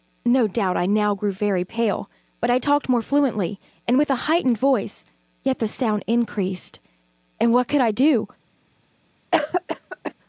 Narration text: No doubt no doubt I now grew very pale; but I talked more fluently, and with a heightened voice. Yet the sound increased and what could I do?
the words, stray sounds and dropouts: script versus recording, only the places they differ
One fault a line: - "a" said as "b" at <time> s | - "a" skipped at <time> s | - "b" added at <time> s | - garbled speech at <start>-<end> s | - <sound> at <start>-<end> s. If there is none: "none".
- "no doubt" skipped at 0.8 s
- cough at 9.3-10.1 s